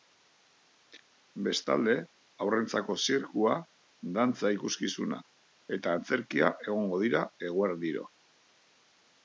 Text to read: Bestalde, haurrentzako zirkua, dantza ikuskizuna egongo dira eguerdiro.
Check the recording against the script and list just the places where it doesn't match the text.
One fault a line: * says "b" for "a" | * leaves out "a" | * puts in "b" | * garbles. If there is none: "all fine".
* puts in "eta antzerkia"